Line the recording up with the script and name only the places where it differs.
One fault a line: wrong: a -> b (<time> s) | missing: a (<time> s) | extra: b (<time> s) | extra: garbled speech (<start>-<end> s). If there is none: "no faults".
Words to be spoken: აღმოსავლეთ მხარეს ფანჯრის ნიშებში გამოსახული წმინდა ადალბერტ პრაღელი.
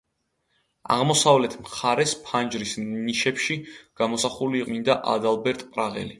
no faults